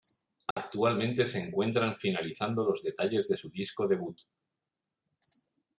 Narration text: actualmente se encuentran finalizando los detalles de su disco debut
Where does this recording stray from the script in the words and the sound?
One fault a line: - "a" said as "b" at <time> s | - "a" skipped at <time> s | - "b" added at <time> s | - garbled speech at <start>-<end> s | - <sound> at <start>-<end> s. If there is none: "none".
- dropout at 0.5-0.6 s